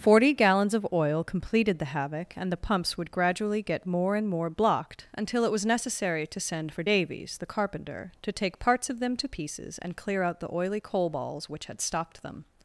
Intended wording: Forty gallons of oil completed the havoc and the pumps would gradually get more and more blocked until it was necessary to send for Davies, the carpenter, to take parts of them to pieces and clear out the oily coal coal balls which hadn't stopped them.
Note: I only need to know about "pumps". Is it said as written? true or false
true